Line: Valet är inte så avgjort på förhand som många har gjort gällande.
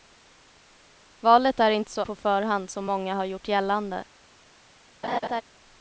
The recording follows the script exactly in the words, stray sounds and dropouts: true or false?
false